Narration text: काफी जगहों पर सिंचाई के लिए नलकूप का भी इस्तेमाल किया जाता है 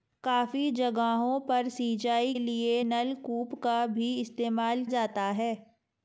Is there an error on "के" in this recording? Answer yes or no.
yes